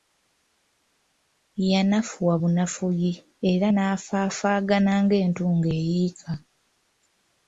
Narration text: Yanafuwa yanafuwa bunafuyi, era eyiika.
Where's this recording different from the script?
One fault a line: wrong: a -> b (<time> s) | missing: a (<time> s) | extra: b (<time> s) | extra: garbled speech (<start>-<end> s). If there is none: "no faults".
missing: yanafuwa (2.3 s)
extra: nafaafaagana ng'entungo (3.7 s)